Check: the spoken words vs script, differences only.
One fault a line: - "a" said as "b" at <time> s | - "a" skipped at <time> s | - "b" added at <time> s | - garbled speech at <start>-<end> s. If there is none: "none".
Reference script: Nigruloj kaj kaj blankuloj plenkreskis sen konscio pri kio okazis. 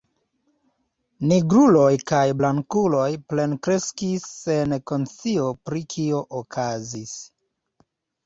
- "kaj" skipped at 2.2 s